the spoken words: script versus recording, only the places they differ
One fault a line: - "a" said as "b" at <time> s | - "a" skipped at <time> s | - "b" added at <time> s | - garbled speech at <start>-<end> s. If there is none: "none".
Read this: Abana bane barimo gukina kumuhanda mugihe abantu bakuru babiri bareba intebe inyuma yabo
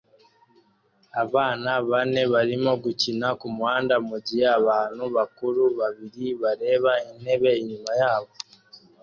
none